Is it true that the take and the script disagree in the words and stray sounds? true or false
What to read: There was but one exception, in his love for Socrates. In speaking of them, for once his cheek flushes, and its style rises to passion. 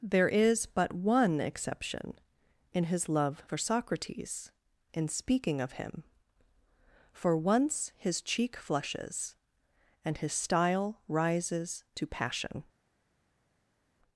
true